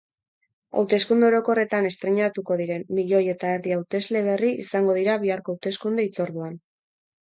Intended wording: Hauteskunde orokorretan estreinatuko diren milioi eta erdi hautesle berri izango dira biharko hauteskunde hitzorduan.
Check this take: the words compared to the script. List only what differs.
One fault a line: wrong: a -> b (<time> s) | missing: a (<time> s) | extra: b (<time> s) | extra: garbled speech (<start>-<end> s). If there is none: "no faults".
no faults